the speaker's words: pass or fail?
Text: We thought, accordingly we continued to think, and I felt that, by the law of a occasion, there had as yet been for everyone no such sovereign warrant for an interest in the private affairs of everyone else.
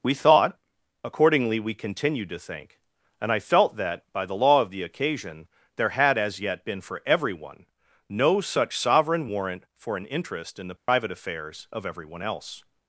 fail